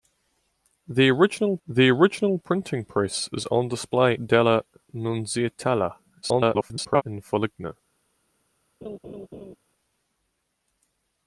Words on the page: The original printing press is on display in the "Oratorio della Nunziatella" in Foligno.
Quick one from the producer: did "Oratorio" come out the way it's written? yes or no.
no